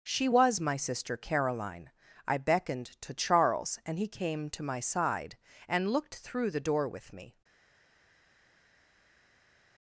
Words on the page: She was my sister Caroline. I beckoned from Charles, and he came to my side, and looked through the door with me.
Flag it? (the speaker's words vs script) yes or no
yes